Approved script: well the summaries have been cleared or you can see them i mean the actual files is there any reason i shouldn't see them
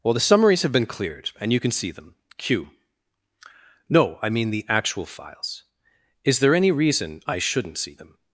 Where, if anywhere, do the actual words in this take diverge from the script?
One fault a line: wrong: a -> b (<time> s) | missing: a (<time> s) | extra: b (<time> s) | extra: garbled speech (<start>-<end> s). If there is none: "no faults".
wrong: or -> and (1.4 s)
extra: q no (2.4 s)